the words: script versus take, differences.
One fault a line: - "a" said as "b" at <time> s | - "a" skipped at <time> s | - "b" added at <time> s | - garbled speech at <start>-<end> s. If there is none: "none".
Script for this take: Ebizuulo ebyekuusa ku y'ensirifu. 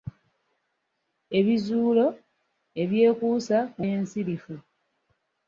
none